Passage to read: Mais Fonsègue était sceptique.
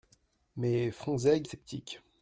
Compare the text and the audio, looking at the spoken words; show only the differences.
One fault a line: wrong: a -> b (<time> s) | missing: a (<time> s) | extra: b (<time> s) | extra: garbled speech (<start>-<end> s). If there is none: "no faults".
missing: était (1.5 s)